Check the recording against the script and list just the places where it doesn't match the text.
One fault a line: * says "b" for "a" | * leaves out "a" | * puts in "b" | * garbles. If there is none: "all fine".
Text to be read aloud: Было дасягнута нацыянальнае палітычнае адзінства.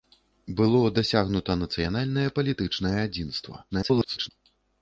* garbles